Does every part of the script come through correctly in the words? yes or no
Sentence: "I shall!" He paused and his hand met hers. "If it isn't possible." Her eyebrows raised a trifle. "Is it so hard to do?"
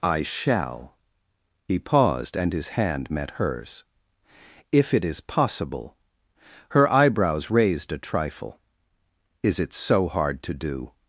no